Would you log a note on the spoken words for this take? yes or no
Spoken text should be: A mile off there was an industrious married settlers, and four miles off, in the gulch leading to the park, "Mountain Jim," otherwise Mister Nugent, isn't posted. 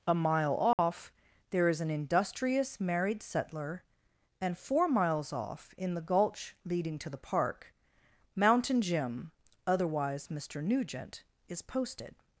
yes